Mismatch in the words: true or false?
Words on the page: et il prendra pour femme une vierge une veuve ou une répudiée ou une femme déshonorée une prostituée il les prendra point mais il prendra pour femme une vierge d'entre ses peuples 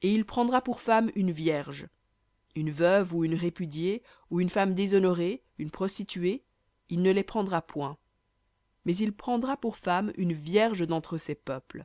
true